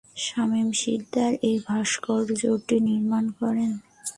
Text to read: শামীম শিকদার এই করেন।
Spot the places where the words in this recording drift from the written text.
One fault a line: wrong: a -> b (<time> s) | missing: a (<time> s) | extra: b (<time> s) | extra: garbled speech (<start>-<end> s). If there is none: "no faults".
extra: ভাস্কর্যটি নির্মাণ (1.7 s)